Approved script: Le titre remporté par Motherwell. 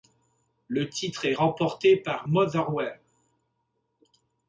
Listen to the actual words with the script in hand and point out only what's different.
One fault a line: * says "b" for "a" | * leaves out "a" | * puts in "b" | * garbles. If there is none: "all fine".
* puts in "est"